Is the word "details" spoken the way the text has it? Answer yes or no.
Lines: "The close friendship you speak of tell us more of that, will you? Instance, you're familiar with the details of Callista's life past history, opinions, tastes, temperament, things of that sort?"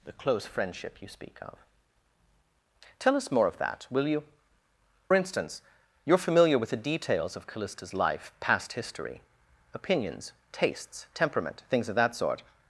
yes